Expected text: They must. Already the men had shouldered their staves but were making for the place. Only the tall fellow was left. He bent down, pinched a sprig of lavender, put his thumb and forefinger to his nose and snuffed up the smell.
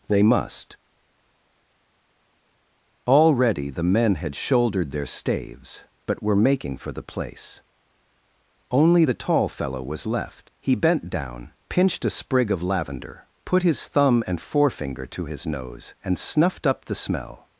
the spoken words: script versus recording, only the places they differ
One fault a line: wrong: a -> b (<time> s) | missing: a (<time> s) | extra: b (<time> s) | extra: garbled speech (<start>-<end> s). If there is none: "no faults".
no faults